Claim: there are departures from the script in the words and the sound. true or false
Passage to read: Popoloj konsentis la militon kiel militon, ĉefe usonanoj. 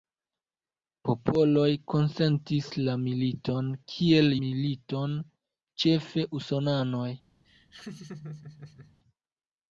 true